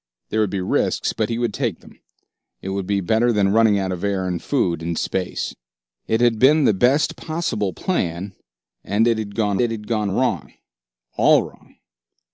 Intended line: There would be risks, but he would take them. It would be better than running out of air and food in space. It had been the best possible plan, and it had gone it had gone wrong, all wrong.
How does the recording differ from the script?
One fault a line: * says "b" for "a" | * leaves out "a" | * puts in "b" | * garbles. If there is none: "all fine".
all fine